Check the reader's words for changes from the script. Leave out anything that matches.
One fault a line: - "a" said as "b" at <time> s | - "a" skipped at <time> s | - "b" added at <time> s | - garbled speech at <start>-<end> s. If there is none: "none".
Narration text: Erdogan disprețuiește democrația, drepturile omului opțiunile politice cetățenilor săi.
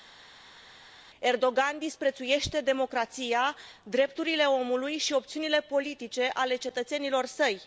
- "și" added at 5.0 s
- "ale" added at 6.3 s